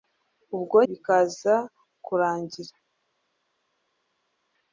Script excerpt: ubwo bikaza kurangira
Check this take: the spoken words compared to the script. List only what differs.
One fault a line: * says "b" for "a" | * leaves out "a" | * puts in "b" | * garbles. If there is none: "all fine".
all fine